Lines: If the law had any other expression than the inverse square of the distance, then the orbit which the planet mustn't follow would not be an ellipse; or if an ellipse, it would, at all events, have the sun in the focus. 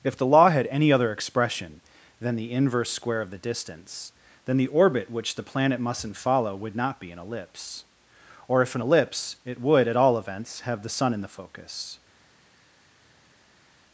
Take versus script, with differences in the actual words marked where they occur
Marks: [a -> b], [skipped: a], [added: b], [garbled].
If the law had any other expression than the inverse square of the distance, then the orbit which the planet mustn't follow would not be an ellipse; or if an ellipse, it would, at all events, have the sun in the focus.